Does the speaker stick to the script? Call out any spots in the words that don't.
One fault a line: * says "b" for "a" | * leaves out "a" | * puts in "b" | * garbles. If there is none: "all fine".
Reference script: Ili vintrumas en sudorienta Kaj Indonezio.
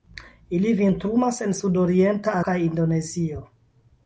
all fine